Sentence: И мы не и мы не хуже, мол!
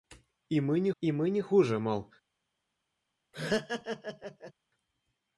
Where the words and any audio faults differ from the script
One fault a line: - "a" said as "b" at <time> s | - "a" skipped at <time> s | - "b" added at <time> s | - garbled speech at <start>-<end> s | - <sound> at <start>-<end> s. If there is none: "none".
- laugh at 3.3-4.5 s